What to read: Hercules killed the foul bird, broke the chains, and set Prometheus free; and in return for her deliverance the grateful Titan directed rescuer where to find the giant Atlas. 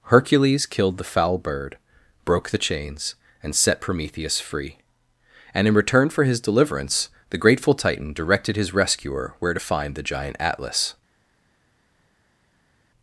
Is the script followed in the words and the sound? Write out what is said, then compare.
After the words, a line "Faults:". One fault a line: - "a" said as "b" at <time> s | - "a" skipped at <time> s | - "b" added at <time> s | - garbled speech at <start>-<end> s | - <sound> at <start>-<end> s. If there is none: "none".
Hercules killed the foul bird, broke the chains, and set Prometheus free; and in return for his deliverance the grateful Titan directed his rescuer where to find the giant Atlas.
Faults:
- "her" said as "his" at 6.2 s
- "his" added at 8.6 s